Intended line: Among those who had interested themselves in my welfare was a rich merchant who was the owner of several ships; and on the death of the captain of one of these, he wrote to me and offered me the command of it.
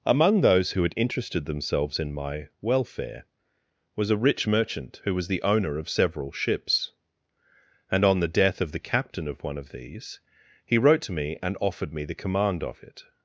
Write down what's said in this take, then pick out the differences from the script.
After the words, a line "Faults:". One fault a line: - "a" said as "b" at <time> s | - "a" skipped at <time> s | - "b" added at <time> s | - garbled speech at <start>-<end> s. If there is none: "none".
Among those who had interested themselves in my welfare was a rich merchant who was the owner of several ships; and on the death of the captain of one of these, he wrote to me and offered me the command of it.
Faults:
none